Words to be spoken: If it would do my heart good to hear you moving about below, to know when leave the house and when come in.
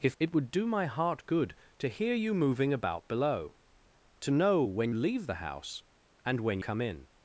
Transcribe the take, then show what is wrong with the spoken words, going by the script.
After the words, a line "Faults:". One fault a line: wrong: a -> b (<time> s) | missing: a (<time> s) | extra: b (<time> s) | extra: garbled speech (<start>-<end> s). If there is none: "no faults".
If it would do my heart good to hear you moving about below, to know when leave the house and when come in.
Faults:
no faults